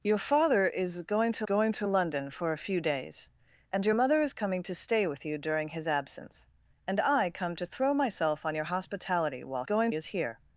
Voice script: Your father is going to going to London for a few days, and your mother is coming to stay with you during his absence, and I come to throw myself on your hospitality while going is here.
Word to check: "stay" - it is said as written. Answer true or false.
true